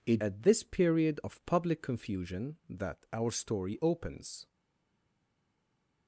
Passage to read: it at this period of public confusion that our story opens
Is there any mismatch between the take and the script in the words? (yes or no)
no